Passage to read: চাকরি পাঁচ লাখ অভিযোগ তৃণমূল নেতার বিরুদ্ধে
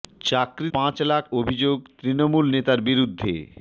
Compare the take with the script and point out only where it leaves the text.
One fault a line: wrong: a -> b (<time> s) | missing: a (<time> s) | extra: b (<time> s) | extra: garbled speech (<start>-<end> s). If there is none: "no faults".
no faults